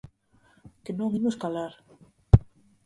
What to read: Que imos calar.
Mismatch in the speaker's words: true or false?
true